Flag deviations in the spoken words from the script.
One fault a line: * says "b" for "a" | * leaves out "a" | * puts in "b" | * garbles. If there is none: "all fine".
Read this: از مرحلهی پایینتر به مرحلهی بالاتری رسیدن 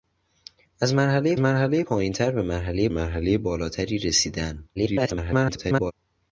* puts in "مرحلهی"
* puts in "مرحلهی"
* garbles